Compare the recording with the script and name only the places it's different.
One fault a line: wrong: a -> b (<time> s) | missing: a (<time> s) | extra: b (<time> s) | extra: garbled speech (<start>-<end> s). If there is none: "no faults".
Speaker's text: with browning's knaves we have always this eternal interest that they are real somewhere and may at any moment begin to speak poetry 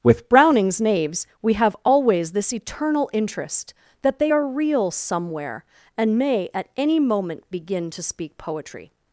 no faults